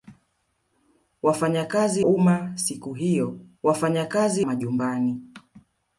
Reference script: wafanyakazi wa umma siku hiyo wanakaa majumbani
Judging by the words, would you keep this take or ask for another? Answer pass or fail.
fail